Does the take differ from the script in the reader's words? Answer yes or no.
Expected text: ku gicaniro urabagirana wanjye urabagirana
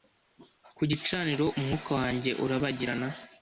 yes